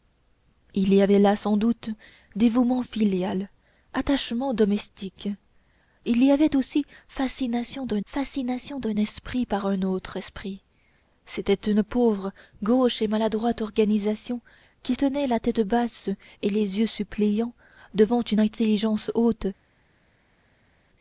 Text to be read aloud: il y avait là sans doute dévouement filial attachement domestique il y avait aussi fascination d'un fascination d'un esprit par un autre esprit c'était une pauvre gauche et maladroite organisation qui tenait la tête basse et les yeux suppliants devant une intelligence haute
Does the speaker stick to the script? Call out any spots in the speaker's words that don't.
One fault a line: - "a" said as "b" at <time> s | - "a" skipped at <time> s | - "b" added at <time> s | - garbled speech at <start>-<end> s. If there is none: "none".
none